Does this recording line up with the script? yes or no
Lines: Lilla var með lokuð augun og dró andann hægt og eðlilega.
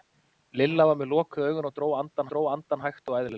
no